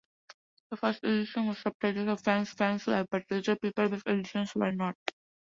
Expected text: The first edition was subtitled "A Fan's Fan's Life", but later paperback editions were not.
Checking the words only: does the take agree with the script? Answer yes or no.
yes